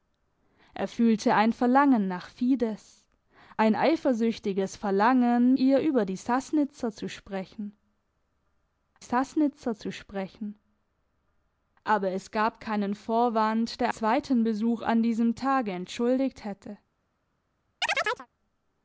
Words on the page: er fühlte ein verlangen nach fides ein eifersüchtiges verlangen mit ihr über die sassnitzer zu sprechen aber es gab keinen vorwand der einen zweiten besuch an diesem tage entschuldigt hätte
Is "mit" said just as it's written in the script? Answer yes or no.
no